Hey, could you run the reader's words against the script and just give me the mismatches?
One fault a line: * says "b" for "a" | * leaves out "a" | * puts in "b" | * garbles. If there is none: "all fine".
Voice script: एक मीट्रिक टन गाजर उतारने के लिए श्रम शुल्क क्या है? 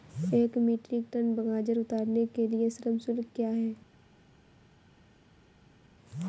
all fine